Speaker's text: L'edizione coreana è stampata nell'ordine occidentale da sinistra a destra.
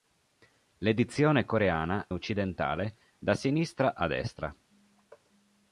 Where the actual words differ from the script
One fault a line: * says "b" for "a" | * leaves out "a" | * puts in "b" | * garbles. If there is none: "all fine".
* leaves out "è stampata nell'ordine"